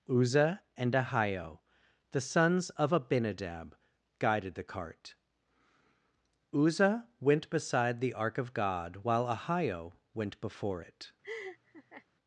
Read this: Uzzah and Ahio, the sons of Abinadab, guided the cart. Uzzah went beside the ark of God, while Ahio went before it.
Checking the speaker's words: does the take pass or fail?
pass